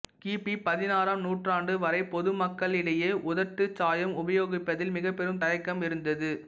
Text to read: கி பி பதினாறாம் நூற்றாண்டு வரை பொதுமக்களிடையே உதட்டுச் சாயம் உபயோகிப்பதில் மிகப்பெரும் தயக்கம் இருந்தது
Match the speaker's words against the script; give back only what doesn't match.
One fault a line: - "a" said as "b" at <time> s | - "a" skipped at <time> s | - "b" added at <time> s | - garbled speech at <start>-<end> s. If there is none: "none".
none